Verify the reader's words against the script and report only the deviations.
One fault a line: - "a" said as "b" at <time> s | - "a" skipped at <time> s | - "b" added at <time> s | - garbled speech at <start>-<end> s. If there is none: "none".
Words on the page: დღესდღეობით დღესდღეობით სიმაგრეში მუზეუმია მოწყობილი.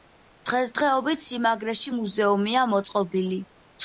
- "დღესდღეობით" skipped at 1.2 s